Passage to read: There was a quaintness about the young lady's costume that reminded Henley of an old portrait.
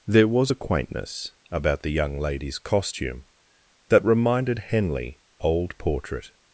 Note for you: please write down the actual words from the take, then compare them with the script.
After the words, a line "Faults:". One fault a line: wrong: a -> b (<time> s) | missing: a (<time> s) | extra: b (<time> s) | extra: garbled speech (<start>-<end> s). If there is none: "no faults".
There was a quaintness about the young lady's costume that reminded Henley old portrait.
Faults:
missing: of an (5.2 s)